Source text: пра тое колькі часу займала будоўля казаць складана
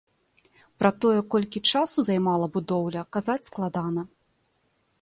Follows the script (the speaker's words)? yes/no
yes